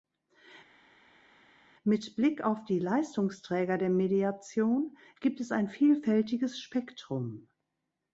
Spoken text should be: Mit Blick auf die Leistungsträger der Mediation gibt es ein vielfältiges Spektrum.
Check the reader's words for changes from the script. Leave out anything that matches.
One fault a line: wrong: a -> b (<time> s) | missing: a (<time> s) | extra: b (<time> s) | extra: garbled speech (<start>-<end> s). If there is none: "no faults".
no faults